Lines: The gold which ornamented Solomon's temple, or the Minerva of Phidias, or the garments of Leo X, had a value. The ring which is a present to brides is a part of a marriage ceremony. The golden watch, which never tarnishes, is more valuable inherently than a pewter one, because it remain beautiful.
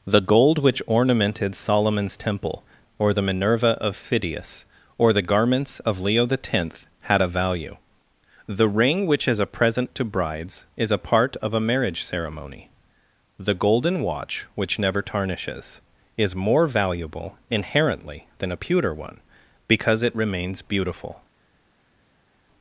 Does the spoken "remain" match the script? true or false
false